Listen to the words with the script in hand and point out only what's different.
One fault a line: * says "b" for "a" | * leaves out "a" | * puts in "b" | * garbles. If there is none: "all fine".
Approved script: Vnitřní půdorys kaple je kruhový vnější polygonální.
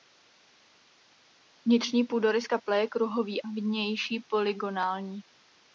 all fine